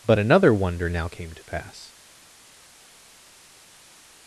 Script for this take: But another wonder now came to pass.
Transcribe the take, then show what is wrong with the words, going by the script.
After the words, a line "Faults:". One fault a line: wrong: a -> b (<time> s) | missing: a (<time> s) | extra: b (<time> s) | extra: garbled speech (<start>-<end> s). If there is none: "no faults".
But another wonder now came to pass.
Faults:
no faults